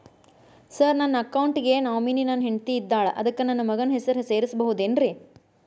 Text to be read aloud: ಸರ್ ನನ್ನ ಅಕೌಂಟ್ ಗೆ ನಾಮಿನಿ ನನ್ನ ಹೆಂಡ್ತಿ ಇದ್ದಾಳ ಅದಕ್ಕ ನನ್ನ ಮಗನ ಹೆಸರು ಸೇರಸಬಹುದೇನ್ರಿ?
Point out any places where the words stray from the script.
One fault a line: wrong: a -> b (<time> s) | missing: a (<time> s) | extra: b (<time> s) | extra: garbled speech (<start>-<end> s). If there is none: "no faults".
no faults